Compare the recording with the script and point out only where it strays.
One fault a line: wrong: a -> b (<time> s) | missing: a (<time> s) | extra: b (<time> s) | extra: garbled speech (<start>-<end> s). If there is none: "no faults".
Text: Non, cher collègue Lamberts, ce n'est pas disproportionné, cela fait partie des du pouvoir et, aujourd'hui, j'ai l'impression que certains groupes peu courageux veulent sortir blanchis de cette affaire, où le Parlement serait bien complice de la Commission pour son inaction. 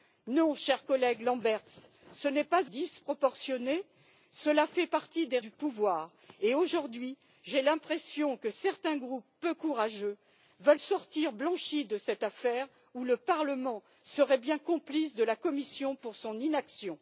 no faults